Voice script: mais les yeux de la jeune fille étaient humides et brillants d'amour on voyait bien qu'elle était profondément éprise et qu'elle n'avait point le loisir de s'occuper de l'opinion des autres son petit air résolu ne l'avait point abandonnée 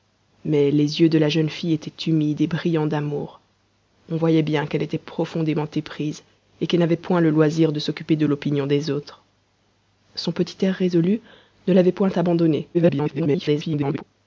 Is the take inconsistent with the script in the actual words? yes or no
yes